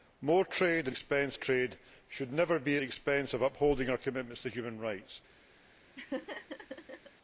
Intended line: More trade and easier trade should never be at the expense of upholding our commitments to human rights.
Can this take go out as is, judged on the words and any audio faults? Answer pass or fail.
fail